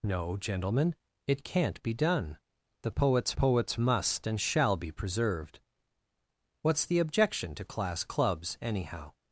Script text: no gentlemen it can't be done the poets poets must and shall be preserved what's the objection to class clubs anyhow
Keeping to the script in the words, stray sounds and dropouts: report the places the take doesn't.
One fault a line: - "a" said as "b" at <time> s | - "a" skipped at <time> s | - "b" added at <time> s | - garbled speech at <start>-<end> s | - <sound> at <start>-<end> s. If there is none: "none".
none